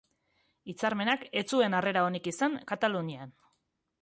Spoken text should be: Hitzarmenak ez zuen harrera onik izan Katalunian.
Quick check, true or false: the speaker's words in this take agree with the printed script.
true